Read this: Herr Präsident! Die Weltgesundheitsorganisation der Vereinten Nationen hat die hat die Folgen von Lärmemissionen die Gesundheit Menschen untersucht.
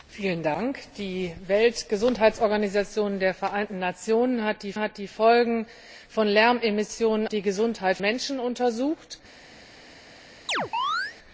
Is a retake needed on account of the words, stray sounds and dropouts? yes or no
yes